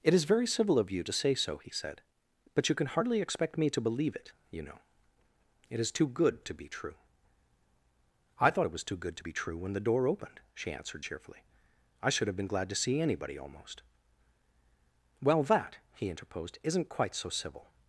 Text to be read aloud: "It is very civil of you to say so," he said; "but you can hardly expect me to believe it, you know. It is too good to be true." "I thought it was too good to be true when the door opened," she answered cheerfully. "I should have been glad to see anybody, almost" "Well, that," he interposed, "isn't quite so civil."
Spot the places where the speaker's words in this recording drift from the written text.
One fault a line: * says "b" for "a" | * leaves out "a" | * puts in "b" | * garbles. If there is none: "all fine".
all fine